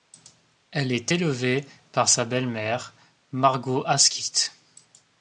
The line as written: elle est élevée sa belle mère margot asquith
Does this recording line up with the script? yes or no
no